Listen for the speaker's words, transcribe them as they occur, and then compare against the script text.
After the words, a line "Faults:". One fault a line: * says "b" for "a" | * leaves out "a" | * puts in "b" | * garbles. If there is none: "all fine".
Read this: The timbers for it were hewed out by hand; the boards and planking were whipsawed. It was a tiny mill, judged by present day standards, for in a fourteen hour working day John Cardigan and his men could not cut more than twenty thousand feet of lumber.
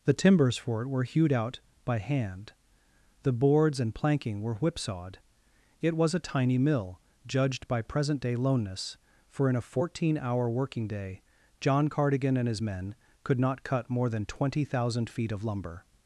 The timbers for it were hewed out by hand; the boards and planking were whipsawed. It was a tiny mill, judged by present day loneness, for in a fourteen hour working day John Cardigan and his men could not cut more than twenty thousand feet of lumber.
Faults:
* says "loneness" for "standards"